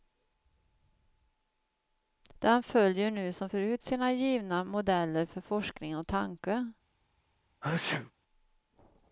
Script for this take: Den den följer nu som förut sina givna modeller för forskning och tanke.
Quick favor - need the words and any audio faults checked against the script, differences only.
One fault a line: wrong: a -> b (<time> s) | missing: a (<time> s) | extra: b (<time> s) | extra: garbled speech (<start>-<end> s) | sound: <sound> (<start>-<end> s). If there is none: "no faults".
missing: den (2.6 s)
sound: sneeze (7.6-8.1 s)